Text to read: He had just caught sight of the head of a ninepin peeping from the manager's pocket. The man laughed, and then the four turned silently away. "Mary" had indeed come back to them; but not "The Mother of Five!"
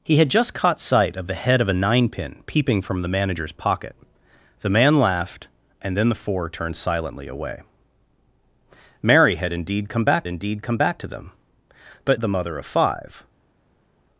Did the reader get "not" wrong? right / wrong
wrong